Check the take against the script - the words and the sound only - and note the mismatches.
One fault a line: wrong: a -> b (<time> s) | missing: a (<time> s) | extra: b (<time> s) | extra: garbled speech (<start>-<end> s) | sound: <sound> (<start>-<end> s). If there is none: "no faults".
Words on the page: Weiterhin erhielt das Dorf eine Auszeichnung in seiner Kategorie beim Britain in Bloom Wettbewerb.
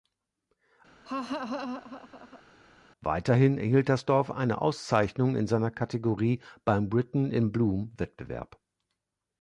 sound: laugh (1.0-2.4 s)